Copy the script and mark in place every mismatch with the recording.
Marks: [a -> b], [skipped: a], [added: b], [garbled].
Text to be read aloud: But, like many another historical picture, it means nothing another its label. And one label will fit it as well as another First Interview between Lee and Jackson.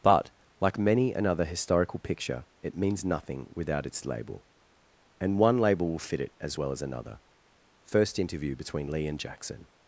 But, like many another historical picture, it means nothing [another -> without] its label. And one label will fit it as well as another First Interview between Lee and Jackson.